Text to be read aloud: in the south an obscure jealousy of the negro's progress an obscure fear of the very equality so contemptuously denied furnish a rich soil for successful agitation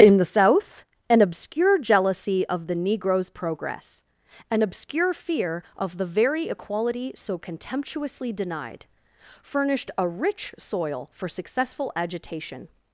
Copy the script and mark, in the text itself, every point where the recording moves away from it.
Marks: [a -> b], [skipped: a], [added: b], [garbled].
in the south an obscure jealousy of the negro's progress an obscure fear of the very equality so contemptuously denied [furnish -> furnished] a rich soil for successful agitation